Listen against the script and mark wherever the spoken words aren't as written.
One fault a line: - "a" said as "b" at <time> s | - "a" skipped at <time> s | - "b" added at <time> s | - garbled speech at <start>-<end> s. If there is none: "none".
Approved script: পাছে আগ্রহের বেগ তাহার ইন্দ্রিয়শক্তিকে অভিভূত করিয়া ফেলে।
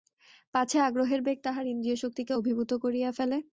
none